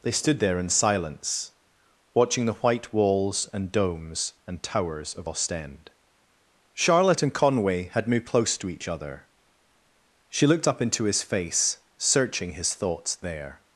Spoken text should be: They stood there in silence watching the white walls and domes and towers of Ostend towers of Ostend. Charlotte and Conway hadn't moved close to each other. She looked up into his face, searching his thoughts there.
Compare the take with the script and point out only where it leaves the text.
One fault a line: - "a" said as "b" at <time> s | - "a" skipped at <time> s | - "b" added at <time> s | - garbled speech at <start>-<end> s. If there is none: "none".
- "towers of Ostend" skipped at 5.9 s
- "hadn't" said as "had" at 7.9 s